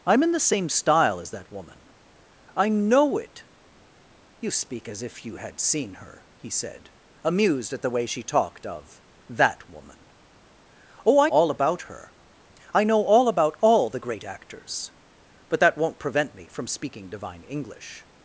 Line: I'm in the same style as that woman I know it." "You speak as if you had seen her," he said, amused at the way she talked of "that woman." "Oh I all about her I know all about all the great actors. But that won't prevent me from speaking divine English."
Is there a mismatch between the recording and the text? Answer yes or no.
no